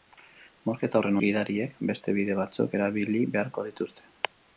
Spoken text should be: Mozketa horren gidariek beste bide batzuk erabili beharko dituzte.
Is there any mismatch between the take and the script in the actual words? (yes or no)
no